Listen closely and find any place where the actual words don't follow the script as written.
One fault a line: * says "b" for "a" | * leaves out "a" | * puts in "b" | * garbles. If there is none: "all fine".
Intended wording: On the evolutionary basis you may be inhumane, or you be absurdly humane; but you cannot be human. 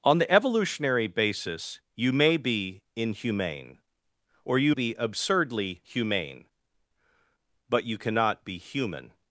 all fine